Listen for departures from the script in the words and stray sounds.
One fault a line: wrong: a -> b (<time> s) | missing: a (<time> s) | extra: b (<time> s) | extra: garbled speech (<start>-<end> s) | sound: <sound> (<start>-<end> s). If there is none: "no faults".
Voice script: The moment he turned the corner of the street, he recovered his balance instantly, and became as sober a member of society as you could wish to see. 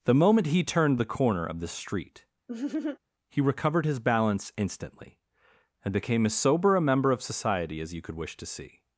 sound: laugh (2.5-3.0 s)